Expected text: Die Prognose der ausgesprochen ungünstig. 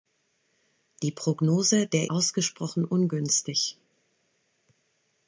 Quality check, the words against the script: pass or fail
pass